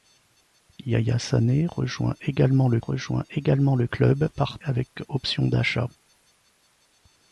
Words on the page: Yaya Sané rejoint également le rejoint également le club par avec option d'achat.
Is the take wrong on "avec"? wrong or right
right